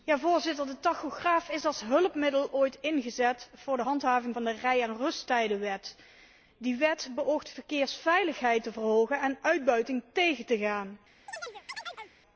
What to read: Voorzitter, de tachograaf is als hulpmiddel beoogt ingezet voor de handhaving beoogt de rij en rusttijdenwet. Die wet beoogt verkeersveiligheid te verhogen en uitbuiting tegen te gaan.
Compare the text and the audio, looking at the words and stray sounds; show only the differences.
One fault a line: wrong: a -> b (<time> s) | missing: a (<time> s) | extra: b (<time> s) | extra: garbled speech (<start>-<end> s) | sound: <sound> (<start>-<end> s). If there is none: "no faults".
wrong: beoogt -> ooit (2.5 s)
wrong: beoogt -> van (4.3 s)
sound: chirp (11.3-12.1 s)